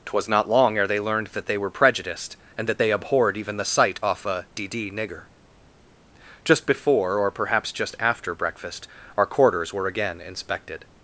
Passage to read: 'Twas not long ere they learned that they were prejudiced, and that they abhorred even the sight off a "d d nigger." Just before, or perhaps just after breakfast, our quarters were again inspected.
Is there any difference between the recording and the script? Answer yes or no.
no